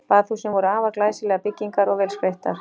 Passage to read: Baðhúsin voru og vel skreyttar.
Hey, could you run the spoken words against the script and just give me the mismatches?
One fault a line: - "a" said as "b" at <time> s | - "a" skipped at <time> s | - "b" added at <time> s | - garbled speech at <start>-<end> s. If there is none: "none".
- "afar glæsilegar byggingar" added at 0.7 s